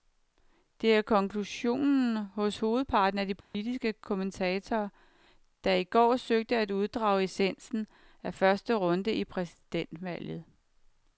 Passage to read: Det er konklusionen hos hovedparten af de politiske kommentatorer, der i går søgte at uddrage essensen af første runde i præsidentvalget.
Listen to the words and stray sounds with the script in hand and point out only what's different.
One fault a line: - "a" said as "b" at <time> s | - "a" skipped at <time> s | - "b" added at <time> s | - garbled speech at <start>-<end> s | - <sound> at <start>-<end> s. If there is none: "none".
- dropout at 3.4-3.5 s